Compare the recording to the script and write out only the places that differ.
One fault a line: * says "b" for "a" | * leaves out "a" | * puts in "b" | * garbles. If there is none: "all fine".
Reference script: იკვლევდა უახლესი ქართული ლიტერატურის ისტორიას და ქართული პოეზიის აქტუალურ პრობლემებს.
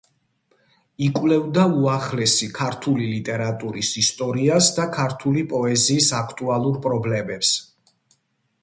all fine